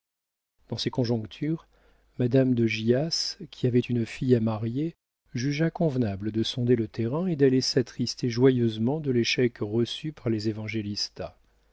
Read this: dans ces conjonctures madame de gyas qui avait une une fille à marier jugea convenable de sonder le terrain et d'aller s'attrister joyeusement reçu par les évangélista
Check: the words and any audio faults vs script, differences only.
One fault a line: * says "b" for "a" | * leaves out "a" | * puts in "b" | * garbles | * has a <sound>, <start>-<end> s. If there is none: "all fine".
* leaves out "une"
* puts in "de l'échec"